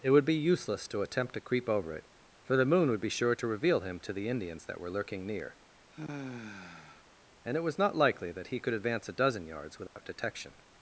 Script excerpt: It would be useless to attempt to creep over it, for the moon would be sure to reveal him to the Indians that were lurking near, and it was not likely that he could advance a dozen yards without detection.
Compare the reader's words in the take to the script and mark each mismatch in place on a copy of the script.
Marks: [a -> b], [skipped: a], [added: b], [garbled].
It would be useless to attempt to creep over it, for the moon would be sure to reveal him to the Indians that were lurking near, and it was not likely that he could advance a dozen yards without detection.